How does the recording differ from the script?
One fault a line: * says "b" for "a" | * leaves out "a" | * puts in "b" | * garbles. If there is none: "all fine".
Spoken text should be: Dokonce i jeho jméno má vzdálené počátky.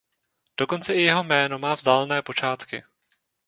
all fine